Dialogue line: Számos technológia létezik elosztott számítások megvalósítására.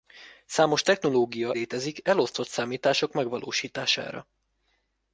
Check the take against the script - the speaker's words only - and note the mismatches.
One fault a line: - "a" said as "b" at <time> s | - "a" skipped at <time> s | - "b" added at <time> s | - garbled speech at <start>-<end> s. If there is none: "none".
none